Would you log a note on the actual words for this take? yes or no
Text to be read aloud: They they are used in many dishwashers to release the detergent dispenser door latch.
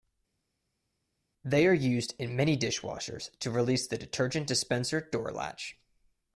yes